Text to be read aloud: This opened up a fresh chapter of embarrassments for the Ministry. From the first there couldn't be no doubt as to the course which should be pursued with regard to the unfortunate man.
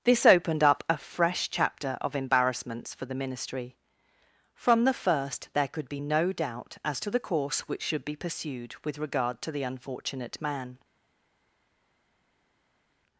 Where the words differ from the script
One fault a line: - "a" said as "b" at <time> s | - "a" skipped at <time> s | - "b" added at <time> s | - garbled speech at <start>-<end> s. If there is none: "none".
- "couldn't" said as "could" at 5.7 s